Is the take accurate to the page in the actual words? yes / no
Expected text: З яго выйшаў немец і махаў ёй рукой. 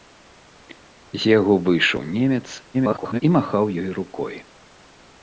no